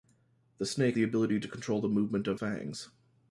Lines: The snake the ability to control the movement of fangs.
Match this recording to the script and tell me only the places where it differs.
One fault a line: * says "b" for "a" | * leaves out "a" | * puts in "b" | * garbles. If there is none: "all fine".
all fine